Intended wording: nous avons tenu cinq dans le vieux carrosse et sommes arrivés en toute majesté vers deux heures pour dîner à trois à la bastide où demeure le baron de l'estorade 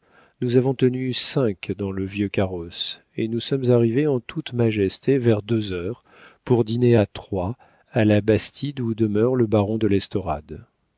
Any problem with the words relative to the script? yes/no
yes